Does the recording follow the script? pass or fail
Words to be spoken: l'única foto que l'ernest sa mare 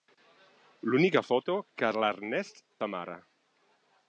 pass